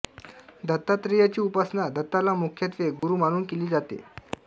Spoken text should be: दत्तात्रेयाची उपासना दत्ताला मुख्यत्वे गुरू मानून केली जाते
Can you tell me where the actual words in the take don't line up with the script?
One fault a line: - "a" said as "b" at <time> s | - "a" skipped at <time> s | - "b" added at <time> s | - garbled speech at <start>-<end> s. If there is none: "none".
none